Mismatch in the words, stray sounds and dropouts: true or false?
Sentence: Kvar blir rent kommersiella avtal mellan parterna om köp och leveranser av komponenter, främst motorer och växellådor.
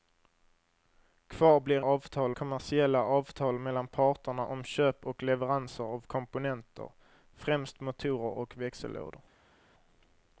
true